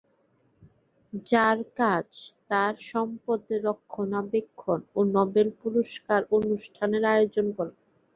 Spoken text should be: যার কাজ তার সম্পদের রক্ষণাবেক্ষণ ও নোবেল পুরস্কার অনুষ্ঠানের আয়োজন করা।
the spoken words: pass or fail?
pass